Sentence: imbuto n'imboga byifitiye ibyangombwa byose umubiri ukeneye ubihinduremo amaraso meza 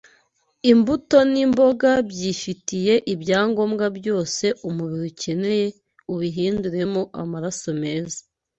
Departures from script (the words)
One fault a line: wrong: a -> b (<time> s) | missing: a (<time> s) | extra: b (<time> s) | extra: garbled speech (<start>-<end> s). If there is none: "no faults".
no faults